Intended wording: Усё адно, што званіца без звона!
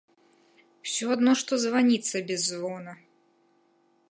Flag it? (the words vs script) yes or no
no